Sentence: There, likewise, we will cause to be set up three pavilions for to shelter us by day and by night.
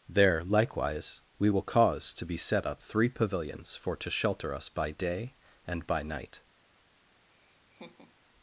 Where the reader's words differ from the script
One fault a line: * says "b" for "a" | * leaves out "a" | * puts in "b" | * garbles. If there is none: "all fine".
all fine